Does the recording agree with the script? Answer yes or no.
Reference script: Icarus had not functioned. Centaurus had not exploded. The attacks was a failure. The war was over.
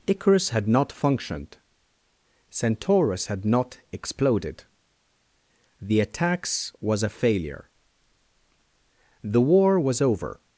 yes